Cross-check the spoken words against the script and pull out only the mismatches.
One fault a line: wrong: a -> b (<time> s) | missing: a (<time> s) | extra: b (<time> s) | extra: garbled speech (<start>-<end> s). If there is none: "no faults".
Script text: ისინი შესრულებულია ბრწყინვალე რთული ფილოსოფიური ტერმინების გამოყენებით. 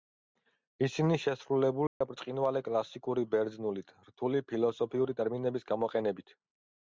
extra: კლასიკური ბერძნულით (2.7 s)